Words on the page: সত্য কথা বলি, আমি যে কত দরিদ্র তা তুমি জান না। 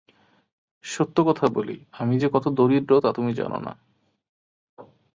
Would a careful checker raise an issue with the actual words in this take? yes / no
no